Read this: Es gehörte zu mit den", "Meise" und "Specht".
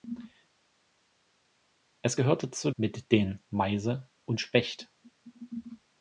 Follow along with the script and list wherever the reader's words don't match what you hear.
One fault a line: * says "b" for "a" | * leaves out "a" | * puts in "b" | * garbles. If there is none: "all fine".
all fine